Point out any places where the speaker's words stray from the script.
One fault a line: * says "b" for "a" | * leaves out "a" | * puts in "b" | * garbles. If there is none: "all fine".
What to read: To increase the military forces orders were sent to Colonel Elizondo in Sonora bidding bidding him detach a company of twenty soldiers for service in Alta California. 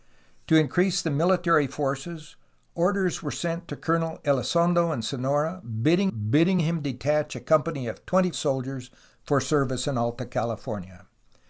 all fine